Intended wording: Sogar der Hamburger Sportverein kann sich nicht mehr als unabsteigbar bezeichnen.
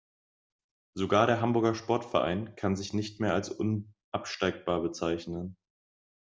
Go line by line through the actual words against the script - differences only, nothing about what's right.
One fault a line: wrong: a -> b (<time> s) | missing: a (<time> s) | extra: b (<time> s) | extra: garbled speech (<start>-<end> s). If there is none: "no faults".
no faults